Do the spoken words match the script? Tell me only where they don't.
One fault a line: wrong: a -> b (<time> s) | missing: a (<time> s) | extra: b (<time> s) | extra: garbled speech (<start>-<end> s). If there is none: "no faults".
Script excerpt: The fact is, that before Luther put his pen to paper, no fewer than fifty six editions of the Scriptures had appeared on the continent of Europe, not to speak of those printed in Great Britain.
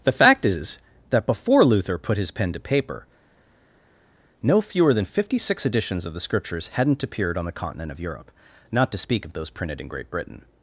wrong: had -> hadn't (6.7 s)